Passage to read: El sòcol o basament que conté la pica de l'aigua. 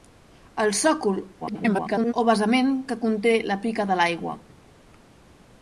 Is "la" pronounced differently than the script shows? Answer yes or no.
no